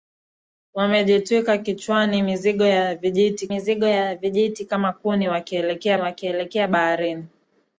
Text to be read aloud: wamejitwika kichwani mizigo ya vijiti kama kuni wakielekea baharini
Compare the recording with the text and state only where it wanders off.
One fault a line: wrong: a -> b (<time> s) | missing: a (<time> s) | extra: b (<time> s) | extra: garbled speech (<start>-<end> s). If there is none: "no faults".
extra: mizigo ya vijiti (3.5 s)
extra: wakielekea (6.0 s)